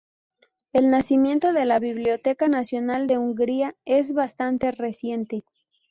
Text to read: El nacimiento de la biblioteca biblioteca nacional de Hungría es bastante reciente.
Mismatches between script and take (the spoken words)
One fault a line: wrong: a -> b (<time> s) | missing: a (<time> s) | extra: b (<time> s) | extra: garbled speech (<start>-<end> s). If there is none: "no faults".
missing: biblioteca (2.5 s)